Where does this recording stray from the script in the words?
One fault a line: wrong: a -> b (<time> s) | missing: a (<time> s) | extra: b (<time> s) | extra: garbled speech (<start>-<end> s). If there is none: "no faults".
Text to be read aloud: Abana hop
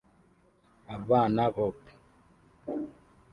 no faults